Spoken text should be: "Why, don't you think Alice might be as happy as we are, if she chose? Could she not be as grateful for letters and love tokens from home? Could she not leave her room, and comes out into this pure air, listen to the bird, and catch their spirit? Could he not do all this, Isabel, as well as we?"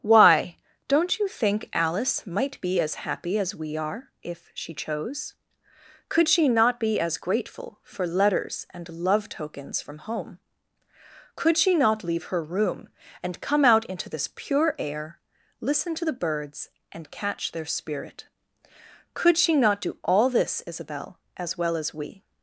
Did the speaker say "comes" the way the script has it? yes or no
no